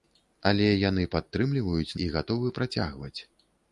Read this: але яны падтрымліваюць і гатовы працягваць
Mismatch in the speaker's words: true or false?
false